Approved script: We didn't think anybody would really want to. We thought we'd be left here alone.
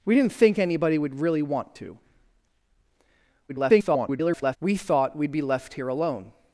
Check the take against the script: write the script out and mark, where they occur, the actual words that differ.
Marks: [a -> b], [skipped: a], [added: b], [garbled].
We didn't think anybody would really want to. [garbled] We thought we'd be left here alone.